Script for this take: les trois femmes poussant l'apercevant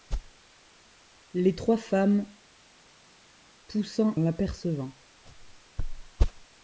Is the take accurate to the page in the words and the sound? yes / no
yes